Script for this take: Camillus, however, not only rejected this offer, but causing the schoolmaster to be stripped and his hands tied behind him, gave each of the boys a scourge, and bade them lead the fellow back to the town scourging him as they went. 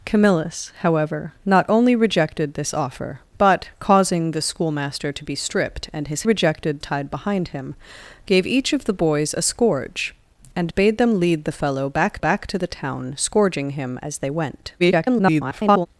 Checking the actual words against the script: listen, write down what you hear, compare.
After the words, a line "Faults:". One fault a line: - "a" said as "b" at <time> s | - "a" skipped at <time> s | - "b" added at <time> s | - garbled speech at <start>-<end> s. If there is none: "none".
Camillus, however, not only rejected this offer, but causing the schoolmaster to be stripped and his rejected tied behind him, gave each of the boys a scourge, and bade them lead the fellow back back to the town scourging him as they went. [garbled]
Faults:
- "hands" said as "rejected" at 6.2 s
- "back" added at 12.2 s
- garbled speech at 14.8-15.9 s